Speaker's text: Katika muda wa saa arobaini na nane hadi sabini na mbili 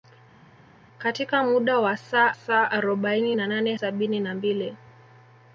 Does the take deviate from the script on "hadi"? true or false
true